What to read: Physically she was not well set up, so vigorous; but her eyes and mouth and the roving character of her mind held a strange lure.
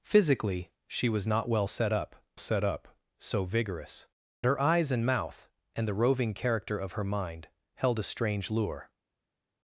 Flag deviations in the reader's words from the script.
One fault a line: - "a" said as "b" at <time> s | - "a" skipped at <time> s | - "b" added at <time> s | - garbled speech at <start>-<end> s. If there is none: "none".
- "set up" added at 2.4 s
- "but" skipped at 4.1 s